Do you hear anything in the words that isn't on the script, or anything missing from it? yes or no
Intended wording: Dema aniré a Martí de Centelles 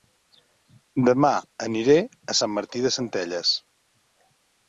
yes